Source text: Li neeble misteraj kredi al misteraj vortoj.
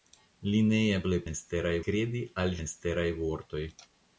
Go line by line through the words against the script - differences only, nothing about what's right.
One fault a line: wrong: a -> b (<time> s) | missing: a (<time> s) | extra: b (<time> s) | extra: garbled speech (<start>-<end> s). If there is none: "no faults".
no faults